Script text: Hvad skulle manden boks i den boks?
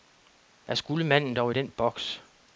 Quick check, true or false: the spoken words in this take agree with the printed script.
false